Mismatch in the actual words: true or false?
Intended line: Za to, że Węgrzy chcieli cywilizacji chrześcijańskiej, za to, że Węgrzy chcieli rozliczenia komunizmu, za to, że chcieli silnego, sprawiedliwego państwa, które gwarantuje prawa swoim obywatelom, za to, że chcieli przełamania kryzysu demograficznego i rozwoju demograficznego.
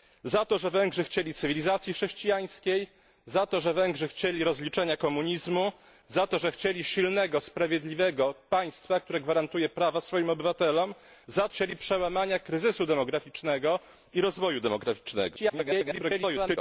true